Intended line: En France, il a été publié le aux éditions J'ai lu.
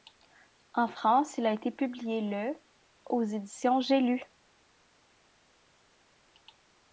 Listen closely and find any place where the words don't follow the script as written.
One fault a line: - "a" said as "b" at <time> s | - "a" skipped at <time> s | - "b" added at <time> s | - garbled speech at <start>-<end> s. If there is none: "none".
none